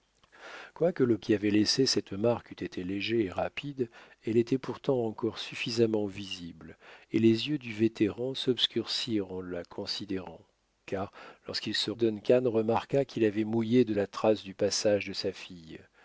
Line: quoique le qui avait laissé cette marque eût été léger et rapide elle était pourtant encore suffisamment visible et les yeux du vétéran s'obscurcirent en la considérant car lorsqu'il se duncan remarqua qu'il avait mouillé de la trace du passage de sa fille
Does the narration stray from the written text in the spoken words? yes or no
no